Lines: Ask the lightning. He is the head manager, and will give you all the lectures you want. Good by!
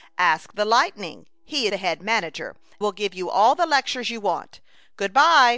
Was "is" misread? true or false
true